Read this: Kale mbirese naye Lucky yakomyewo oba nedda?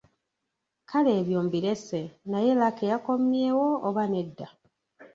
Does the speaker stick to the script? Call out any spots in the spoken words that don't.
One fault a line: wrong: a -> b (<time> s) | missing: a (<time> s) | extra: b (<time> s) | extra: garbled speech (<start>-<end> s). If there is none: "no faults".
extra: ebyo (1.2 s)